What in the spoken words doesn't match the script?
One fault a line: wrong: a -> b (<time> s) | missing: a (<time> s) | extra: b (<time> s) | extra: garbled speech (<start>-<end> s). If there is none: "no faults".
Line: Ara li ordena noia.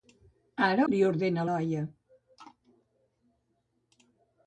no faults